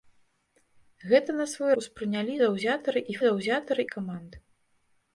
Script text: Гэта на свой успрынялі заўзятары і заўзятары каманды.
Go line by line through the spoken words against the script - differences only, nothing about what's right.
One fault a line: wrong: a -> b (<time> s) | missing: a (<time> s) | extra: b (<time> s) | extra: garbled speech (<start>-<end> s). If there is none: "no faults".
no faults